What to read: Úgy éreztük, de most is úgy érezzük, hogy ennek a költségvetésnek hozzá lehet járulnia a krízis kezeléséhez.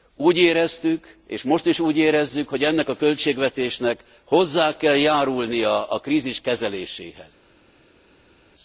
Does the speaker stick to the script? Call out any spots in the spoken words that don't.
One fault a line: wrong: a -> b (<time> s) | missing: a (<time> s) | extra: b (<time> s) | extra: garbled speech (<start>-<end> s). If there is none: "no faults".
wrong: de -> és (1.3 s)
wrong: lehet -> kell (4.8 s)